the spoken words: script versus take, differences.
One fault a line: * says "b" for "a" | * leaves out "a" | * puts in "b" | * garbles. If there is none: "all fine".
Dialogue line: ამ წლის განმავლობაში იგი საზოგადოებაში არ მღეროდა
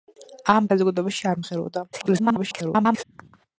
* leaves out "წლის განმავლობაში იგი"
* garbles